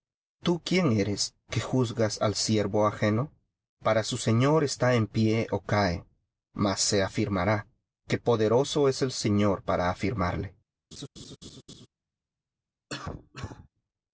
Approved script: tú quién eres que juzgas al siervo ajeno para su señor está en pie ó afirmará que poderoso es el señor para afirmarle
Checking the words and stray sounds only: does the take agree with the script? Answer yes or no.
no